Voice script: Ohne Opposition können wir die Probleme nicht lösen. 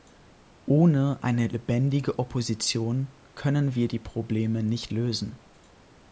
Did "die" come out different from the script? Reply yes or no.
no